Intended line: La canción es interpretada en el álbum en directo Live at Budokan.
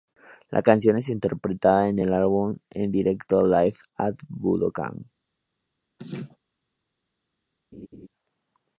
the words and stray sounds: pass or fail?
fail